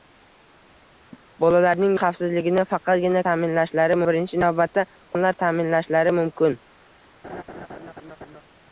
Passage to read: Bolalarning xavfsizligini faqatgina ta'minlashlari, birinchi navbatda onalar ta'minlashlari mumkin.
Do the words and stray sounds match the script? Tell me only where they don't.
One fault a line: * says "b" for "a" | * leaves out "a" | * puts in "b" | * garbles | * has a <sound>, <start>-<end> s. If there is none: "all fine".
* has a laugh, 1.1-1.3 s
* has a laugh, 7.2-8.4 s